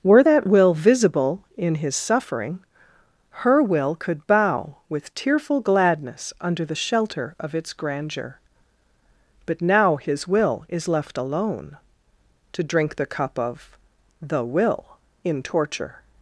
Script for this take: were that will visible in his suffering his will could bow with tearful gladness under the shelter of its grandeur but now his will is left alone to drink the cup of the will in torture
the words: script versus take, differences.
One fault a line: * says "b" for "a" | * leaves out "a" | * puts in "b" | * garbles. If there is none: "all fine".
* says "her" for "his"